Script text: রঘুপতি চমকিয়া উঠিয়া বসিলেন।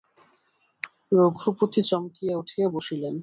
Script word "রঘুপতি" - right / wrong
right